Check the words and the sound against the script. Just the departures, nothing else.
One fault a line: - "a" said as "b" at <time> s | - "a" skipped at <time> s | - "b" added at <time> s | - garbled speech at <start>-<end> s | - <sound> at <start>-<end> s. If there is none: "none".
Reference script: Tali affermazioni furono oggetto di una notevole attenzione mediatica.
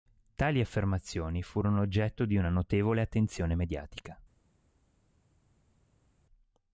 none